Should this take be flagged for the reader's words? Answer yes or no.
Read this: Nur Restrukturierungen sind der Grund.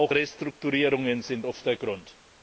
yes